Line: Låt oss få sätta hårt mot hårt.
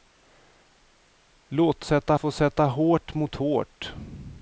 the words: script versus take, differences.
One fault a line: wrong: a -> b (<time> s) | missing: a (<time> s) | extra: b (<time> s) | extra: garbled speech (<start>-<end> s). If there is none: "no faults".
wrong: oss -> sätta (1.8 s)